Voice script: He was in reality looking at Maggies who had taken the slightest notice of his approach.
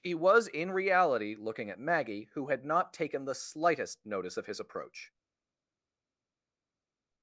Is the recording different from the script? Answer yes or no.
yes